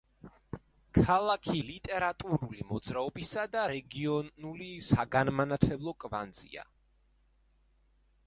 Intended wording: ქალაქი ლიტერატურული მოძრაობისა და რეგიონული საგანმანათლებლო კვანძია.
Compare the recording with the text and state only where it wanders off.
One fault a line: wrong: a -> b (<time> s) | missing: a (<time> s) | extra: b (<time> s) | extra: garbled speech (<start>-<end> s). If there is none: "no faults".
no faults